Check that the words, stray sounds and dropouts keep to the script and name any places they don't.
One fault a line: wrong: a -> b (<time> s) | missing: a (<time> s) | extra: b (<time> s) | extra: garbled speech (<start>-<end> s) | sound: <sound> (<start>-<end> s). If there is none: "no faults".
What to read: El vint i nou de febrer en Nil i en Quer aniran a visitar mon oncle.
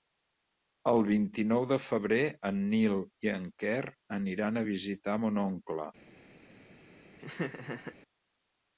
sound: laugh (7.2-8.0 s)